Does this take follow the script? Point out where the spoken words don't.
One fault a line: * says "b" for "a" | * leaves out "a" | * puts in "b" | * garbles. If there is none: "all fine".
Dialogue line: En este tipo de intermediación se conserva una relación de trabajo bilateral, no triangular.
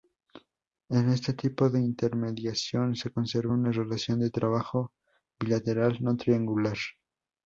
all fine